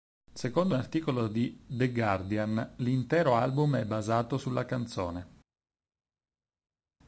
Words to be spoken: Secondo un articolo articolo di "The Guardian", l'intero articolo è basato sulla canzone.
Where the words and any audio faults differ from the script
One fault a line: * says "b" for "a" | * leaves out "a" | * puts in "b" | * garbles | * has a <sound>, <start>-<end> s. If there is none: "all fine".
* leaves out "articolo"
* says "album" for "articolo"